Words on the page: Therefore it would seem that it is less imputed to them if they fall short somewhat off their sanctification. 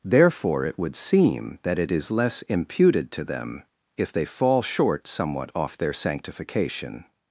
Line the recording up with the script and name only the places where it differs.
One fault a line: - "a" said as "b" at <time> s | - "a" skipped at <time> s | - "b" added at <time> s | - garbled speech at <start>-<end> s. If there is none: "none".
none